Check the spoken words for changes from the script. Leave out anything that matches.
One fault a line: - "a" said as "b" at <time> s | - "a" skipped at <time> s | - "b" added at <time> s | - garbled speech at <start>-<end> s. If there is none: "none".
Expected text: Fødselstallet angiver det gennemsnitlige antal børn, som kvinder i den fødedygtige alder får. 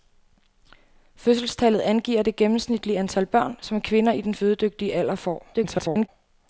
- garbled speech at 5.5-6.1 s